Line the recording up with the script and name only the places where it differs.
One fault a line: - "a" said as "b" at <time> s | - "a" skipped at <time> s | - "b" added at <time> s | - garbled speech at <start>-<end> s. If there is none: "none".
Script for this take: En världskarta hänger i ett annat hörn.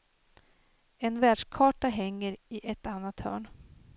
none